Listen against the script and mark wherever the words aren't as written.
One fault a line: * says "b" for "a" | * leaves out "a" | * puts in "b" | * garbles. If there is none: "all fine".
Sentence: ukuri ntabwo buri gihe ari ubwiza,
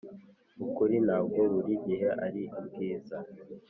all fine